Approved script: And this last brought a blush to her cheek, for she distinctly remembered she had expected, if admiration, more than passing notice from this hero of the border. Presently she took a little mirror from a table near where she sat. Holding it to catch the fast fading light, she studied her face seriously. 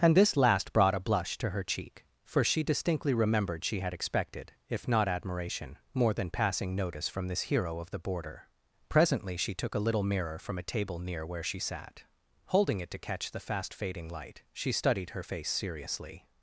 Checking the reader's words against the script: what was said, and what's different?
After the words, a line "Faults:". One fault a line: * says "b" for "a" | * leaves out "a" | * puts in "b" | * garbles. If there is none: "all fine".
And this last brought a blush to her cheek, for she distinctly remembered she had expected, if not admiration, more than passing notice from this hero of the border. Presently she took a little mirror from a table near where she sat. Holding it to catch the fast fading light, she studied her face seriously.
Faults:
* puts in "not"